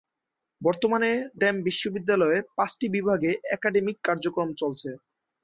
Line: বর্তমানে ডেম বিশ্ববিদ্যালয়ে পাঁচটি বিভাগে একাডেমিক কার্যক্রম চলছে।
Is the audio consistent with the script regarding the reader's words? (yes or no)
yes